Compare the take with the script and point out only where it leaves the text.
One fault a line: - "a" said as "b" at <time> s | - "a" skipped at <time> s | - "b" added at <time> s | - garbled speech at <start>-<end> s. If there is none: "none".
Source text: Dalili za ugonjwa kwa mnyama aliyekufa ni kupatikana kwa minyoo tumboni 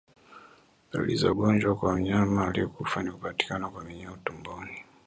none